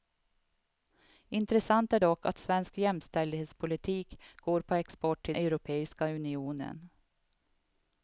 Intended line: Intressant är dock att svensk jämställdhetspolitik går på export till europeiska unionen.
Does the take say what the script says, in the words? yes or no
yes